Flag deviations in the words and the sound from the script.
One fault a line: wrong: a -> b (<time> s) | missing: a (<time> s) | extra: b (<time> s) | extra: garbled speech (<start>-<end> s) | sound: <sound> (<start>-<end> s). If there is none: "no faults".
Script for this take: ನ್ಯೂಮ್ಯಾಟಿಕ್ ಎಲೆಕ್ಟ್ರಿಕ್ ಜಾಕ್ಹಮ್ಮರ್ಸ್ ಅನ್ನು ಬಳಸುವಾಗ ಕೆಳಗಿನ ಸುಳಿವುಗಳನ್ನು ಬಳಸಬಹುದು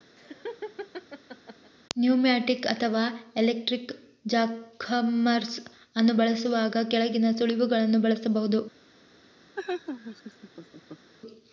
sound: laugh (0.2-1.7 s)
extra: ಅಥವಾ (2.6 s)
sound: laugh (9.6-11.1 s)